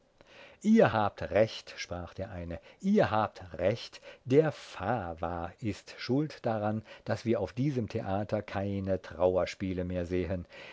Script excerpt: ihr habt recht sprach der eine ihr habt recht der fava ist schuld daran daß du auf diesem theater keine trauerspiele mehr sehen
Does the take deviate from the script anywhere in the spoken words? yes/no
yes